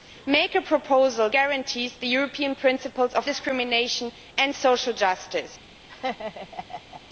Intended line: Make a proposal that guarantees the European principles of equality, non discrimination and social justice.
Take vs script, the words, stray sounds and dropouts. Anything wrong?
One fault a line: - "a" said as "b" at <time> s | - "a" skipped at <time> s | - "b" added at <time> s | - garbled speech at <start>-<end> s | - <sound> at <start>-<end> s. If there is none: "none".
- "that" skipped at 1.3 s
- "equality non" skipped at 3.3 s
- laugh at 5.9-7.0 s